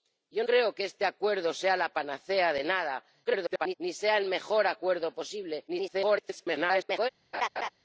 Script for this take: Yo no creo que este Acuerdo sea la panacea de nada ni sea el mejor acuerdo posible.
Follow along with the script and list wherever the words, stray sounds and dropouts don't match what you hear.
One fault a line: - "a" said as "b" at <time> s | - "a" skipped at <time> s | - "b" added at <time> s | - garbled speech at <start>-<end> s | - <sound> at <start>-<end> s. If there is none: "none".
- "no" skipped at 0.4 s
- garbled speech at 3.2-3.7 s
- garbled speech at 5.7-7.1 s
- laugh at 7.3-7.7 s